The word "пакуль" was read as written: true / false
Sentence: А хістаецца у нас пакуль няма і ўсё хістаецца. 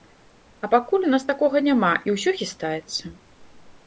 false